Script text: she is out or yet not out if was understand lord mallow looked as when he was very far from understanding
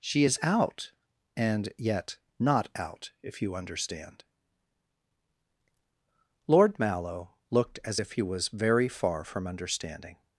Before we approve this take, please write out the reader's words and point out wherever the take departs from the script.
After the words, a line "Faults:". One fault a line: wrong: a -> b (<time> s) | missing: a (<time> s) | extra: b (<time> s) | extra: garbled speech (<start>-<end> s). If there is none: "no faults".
she is out and yet not out if you understand lord mallow looked as if he was very far from understanding
Faults:
wrong: or -> and (1.4 s)
wrong: was -> you (3.4 s)
wrong: when -> if (8.0 s)